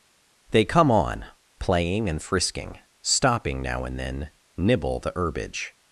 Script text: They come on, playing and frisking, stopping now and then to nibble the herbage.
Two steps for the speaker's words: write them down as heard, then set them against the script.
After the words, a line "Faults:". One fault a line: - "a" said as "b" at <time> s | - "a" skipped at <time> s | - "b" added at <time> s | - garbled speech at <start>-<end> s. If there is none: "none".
They come on, playing and frisking, stopping now and then nibble the herbage.
Faults:
- "to" skipped at 4.3 s